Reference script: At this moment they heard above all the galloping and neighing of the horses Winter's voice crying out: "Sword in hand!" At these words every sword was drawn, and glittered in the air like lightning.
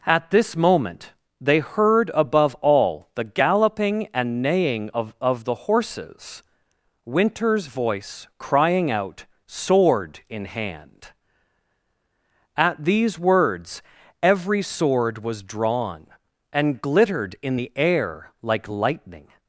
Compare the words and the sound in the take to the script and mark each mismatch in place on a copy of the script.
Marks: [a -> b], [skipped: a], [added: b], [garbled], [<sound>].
At this moment they heard above all the galloping and neighing of [added: of] the horses Winter's voice crying out: "Sword in hand!" At these words every sword was drawn, and glittered in the air like lightning.